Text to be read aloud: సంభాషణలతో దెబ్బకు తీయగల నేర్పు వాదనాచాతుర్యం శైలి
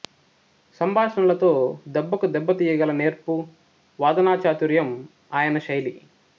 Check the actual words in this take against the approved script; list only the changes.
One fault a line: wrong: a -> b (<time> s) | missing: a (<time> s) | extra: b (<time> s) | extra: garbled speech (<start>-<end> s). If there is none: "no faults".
extra: దెబ్బ (2.3 s)
extra: ఆయన (5.3 s)